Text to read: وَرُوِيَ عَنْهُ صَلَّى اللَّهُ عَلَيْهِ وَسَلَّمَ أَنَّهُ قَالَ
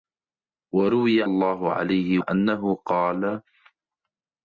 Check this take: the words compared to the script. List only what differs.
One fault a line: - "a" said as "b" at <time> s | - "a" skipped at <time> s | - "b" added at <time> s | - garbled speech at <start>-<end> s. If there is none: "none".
- "عَنْهُ صَلَّى" skipped at 1.2 s
- "وَسَلَّمَ" skipped at 2.2 s